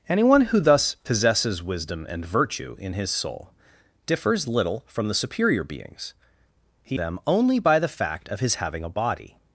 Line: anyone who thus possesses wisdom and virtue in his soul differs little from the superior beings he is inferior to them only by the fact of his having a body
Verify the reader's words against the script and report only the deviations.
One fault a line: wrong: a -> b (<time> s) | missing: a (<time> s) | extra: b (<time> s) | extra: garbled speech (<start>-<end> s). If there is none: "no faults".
missing: is inferior to (7.0 s)